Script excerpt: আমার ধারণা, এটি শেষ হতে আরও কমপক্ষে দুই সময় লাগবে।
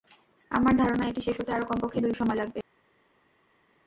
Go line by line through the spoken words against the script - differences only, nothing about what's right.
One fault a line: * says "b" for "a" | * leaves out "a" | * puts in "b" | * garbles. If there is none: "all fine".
all fine